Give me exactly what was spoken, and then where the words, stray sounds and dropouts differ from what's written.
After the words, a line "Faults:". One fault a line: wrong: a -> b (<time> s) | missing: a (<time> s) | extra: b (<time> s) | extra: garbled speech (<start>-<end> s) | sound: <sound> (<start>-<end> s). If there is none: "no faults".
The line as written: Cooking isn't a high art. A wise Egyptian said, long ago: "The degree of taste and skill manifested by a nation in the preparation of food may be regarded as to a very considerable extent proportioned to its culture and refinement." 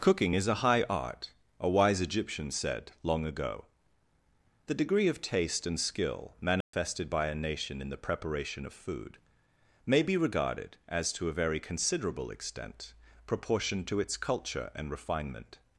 Cooking is a high art. A wise Egyptian said, long ago: "The degree of taste and skill manifested by a nation in the preparation of food may be regarded as to a very considerable extent proportioned to its culture and refinement."
Faults:
wrong: isn't -> is (0.3 s)
sound: dropout (6.6-6.7 s)